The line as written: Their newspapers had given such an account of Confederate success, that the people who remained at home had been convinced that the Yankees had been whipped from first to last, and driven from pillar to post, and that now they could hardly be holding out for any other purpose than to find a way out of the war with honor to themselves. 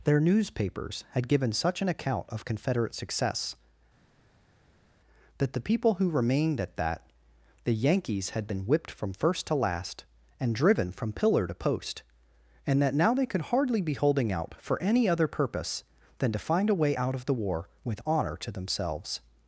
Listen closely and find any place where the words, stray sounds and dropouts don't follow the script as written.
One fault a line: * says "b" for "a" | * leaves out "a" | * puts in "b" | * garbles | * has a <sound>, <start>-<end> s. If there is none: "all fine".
* leaves out "home had been convinced"